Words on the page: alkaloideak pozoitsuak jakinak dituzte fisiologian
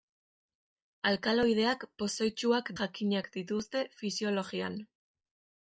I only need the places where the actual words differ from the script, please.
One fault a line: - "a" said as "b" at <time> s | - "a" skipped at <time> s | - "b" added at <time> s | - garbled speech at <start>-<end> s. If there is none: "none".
none